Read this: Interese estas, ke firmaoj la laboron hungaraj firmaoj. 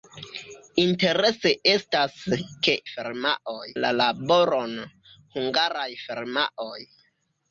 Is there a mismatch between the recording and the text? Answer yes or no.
no